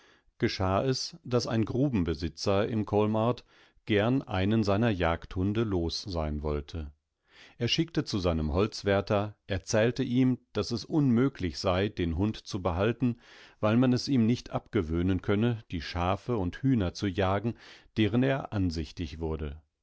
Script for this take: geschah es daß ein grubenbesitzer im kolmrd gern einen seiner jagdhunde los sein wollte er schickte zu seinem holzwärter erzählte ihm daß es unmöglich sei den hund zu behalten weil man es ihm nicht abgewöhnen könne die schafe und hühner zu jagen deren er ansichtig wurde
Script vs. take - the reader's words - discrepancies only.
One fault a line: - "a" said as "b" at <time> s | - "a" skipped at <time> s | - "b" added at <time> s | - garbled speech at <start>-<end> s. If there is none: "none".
none